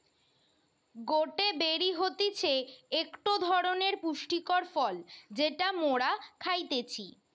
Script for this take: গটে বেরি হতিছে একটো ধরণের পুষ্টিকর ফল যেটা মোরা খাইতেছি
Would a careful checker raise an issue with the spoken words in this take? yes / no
no